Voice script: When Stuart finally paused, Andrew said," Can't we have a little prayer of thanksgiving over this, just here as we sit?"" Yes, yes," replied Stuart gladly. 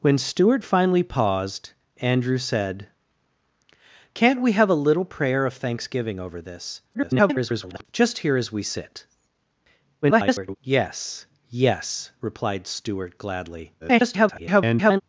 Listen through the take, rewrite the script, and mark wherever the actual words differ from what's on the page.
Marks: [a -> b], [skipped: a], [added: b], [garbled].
When Stuart finally paused, Andrew said," Can't we have a little prayer of thanksgiving over this, [garbled] just here as we sit?"" [garbled] Yes, yes," replied Stuart gladly. [garbled]